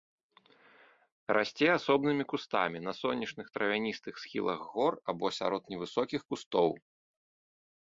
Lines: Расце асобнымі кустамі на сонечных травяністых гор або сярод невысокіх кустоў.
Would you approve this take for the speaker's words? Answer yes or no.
no